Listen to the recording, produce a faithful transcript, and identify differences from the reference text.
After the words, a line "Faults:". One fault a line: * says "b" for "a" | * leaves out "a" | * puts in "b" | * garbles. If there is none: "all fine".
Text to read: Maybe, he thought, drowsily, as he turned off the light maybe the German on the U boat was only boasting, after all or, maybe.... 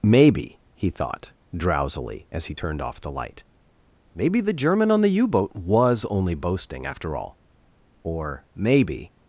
Maybe, he thought, drowsily, as he turned off the light maybe the German on the U boat was only boasting, after all or, maybe....
Faults:
all fine